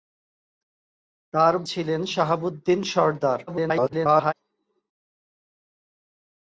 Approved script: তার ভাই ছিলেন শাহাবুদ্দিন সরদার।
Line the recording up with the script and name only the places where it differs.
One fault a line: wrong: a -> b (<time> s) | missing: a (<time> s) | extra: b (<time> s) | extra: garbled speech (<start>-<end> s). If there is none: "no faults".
missing: ভাই (1.5 s)
extra: garbled speech (3.5-4.3 s)